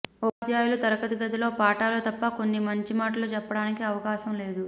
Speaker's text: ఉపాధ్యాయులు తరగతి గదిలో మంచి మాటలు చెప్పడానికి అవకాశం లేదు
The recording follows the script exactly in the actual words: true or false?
false